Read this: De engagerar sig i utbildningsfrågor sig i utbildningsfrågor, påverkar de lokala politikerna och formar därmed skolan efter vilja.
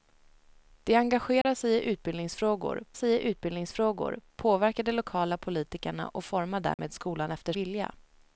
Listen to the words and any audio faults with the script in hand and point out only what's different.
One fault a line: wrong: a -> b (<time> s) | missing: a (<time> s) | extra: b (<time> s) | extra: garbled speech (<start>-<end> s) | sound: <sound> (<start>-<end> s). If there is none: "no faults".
sound: dropout (1.4-1.4 s)
sound: dropout (6.7-6.8 s)